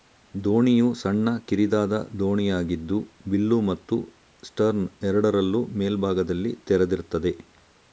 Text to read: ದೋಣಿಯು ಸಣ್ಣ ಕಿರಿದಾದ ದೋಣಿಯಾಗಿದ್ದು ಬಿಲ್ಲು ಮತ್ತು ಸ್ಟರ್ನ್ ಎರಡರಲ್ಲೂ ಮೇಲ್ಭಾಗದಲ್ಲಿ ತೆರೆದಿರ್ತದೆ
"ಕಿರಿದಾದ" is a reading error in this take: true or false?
false